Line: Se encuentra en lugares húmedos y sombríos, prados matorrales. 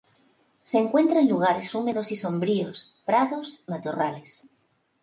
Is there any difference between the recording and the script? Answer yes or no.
no